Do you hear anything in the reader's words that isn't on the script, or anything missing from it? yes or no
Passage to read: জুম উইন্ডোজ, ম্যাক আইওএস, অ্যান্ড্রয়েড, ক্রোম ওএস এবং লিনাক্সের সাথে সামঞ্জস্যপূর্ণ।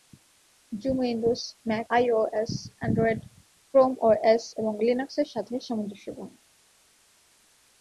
no